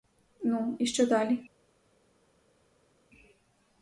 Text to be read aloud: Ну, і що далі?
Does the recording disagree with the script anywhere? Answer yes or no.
no